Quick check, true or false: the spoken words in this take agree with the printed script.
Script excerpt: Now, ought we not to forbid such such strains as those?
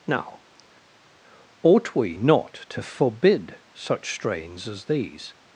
false